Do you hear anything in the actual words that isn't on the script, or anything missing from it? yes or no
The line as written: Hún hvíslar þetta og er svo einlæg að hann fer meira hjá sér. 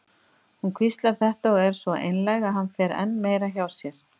yes